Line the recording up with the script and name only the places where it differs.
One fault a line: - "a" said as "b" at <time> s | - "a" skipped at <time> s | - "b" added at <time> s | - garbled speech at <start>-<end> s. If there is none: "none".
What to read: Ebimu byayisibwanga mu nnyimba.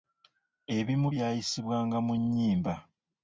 none